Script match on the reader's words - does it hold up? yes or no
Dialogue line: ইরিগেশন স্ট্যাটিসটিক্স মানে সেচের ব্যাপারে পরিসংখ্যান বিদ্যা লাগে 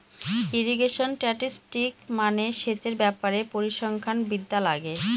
yes